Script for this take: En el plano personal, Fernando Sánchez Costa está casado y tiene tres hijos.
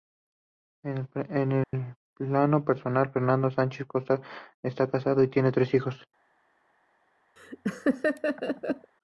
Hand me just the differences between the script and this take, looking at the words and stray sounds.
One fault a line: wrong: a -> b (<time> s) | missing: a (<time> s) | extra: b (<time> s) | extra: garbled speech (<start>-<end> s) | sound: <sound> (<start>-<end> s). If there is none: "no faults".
sound: dropout (1.6-1.7 s)
sound: laugh (7.4-8.9 s)